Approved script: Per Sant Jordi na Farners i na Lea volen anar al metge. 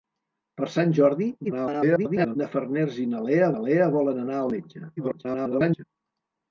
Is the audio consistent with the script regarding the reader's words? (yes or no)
no